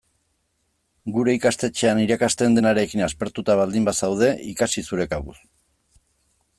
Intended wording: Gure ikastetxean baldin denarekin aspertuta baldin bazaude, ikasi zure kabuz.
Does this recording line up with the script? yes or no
no